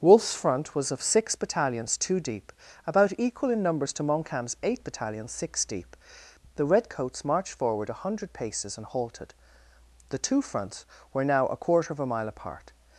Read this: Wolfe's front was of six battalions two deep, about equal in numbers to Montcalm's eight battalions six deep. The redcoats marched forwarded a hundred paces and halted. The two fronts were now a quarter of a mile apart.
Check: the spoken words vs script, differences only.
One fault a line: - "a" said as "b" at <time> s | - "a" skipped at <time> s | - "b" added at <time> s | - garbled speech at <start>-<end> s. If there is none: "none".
- "forwarded" said as "forward" at 7.5 s